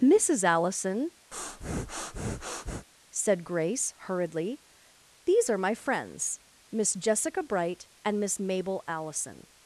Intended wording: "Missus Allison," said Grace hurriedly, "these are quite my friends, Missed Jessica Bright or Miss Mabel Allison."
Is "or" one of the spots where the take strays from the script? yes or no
yes